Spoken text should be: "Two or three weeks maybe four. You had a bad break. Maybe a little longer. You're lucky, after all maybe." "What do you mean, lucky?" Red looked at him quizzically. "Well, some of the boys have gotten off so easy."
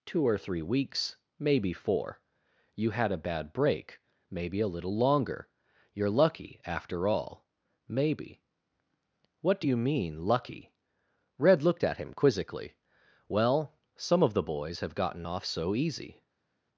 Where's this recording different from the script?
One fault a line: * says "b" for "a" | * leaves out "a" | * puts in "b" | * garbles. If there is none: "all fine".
all fine